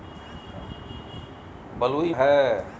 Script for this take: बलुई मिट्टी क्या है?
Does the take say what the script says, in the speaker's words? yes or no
no